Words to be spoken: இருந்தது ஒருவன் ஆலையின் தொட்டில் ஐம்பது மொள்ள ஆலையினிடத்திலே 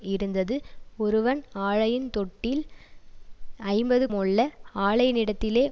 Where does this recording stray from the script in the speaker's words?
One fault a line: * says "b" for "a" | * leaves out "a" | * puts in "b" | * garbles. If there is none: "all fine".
all fine